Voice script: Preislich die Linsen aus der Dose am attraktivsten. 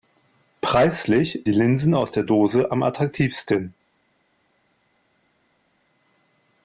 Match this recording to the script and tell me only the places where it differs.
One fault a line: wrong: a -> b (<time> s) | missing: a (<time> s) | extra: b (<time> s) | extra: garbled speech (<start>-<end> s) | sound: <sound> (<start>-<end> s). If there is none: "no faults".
no faults